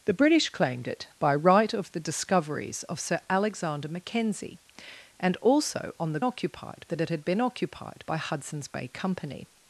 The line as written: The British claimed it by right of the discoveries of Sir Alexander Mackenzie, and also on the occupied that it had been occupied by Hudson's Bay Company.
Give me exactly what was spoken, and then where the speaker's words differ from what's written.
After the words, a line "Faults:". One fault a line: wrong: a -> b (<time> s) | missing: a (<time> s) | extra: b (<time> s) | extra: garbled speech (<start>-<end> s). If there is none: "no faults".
The British claimed it by right of the discoveries of Sir Alexander Mackenzie, and also on the occupied that it had been occupied by Hudson's Bay Company.
Faults:
no faults